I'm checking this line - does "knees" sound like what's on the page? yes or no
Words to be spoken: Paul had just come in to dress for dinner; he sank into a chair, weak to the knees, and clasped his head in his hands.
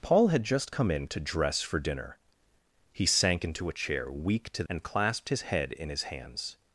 no